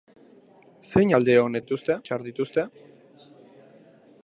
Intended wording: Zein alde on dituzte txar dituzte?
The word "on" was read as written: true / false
true